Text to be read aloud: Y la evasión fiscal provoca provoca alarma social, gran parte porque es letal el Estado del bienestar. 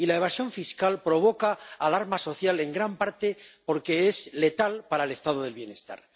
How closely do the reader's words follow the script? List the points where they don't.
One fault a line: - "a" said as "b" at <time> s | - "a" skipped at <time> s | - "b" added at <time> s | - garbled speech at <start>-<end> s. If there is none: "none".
- "provoca" skipped at 1.6 s
- "en" added at 2.6 s
- "para" added at 4.9 s